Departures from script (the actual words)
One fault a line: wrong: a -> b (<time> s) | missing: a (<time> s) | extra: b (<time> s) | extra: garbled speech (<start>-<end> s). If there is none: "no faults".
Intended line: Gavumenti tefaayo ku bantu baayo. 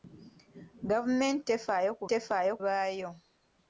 wrong: bantu -> tefaayo (2.1 s)